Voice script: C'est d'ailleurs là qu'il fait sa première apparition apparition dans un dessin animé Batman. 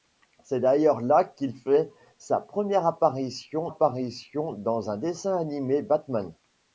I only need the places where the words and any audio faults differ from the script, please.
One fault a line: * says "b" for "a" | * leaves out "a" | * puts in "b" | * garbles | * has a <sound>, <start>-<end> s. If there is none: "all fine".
all fine